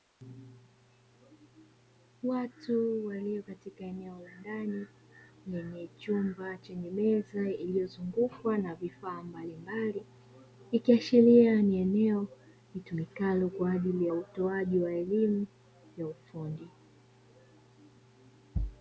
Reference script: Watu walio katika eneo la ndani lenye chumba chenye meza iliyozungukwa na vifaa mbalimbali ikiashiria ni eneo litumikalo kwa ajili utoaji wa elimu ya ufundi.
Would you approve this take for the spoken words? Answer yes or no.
yes